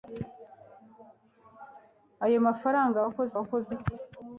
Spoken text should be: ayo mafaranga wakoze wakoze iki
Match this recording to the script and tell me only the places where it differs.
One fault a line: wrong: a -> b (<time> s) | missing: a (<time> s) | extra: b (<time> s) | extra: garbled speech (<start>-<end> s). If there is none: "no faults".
no faults